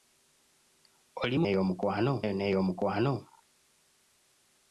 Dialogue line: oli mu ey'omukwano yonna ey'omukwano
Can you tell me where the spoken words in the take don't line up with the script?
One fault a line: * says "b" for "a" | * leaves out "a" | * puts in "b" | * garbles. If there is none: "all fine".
all fine